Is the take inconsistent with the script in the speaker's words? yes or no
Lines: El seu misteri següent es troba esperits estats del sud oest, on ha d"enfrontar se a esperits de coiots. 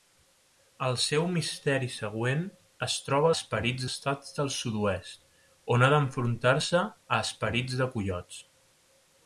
no